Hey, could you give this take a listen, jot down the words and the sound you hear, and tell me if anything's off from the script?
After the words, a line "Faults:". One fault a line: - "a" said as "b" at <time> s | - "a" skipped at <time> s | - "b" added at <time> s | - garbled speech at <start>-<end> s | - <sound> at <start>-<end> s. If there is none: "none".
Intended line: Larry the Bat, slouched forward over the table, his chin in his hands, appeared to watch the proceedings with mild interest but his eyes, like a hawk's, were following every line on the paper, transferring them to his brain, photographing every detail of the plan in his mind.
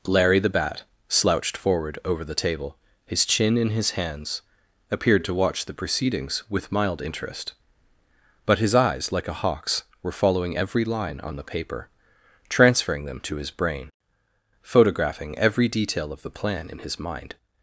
Larry the Bat, slouched forward over the table, his chin in his hands, appeared to watch the proceedings with mild interest but his eyes, like a hawk's, were following every line on the paper, transferring them to his brain, photographing every detail of the plan in his mind.
Faults:
none